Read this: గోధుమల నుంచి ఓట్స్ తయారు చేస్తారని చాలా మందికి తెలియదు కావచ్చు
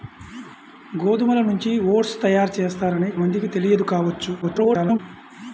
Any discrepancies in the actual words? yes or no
yes